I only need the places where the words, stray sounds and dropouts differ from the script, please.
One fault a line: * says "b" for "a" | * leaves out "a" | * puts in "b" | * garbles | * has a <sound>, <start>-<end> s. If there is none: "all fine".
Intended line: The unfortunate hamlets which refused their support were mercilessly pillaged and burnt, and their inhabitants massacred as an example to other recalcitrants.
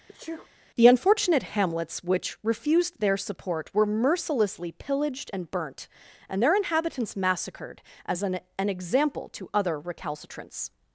* has a sneeze, 0.1-0.5 s
* puts in "an"